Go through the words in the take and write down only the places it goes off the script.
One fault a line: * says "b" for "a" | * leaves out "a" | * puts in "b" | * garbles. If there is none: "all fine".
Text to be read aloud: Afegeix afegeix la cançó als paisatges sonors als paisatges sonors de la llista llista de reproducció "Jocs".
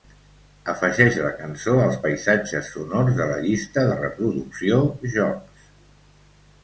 * leaves out "afegeix"
* leaves out "als paisatges sonors"
* leaves out "llista"